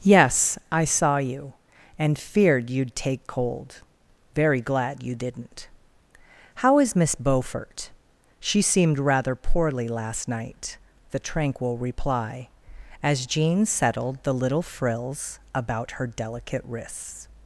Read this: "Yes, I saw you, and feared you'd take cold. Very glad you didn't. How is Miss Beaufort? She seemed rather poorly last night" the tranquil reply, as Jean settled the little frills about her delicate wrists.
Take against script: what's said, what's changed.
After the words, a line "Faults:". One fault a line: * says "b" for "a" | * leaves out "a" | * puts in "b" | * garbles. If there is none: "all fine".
"Yes, I saw you, and feared you'd take cold. Very glad you didn't. How is Miss Beaufort? She seemed rather poorly last night" the tranquil reply, as Jean settled the little frills about her delicate wrists.
Faults:
all fine